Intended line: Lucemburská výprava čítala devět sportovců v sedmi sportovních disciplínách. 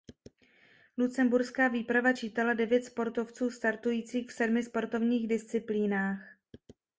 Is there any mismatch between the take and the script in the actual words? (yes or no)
yes